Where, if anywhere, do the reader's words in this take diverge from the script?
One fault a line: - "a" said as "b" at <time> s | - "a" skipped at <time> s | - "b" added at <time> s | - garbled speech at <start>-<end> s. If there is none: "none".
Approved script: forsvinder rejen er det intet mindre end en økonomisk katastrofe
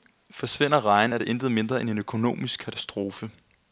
none